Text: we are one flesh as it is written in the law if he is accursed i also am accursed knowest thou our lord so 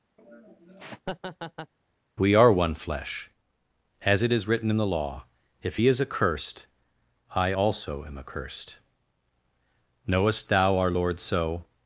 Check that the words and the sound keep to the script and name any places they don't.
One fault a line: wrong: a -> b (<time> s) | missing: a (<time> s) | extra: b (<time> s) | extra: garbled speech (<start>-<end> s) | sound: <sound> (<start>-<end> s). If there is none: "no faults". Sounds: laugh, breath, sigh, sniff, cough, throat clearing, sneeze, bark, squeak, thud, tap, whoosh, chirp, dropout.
sound: laugh (0.2-1.7 s)